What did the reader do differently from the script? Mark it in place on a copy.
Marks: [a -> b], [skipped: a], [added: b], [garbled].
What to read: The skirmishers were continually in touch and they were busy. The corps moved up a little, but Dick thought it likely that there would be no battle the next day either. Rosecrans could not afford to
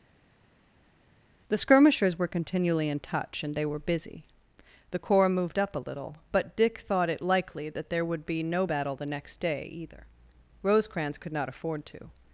The skirmishers were continually in touch and they were busy. The corps moved up a little, but Dick thought it likely that there would be no battle the next day either. Rosecrans could not afford to